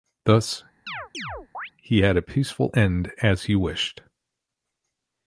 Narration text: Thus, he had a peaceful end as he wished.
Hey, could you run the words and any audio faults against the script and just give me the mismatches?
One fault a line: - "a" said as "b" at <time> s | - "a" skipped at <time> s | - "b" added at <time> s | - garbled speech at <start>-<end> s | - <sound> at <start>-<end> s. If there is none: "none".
- chirp at 0.9-1.7 s